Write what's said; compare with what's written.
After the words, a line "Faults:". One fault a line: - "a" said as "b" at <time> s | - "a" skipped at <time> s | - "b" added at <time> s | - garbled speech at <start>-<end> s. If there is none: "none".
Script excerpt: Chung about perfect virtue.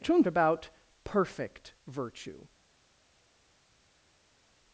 Chung about perfect virtue.
Faults:
none